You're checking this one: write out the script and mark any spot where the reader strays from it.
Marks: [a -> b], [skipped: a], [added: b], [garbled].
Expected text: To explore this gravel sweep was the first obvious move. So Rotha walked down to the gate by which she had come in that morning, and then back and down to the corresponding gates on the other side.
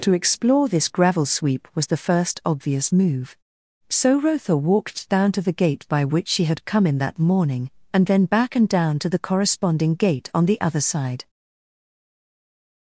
To explore this gravel sweep was the first obvious move. So Rotha walked down to the gate by which she had come in that morning, and then back and down to the corresponding [gates -> gate] on the other side.